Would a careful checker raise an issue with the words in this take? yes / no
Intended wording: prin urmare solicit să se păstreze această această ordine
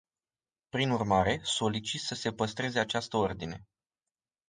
yes